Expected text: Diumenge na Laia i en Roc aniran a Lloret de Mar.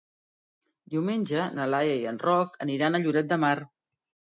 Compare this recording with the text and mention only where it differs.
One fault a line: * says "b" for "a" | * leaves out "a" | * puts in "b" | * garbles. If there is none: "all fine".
all fine